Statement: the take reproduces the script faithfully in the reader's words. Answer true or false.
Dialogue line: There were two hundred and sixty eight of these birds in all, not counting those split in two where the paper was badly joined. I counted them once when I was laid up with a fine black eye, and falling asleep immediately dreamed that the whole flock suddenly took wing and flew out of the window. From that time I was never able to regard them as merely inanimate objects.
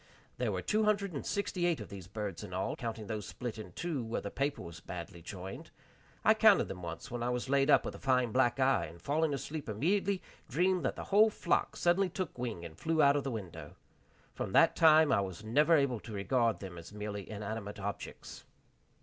false